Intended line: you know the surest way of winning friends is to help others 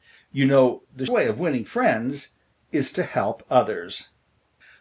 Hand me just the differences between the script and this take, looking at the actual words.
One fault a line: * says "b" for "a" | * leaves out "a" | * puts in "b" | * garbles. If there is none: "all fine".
* leaves out "surest"